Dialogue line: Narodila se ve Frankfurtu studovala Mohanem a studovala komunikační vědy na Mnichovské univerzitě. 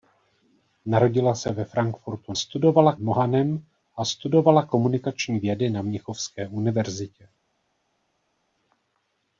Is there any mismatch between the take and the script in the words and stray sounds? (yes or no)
no